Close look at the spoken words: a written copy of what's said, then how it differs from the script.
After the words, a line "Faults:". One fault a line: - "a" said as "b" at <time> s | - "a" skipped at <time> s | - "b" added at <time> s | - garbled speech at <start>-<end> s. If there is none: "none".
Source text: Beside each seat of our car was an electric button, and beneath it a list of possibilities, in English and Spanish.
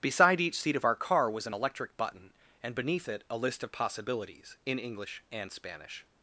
Beside each seat of our car was an electric button, and beneath it a list of possibilities, in English and Spanish.
Faults:
none